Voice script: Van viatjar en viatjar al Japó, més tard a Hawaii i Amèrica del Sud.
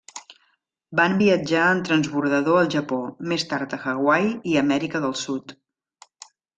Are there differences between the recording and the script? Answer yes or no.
yes